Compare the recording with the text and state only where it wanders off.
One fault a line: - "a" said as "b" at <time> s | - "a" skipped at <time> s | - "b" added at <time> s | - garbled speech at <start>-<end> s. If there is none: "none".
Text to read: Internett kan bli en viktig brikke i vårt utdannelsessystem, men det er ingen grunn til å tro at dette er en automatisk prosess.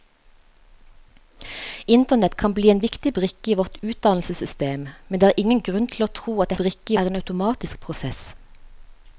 - "dette" said as "brikke" at 6.6 s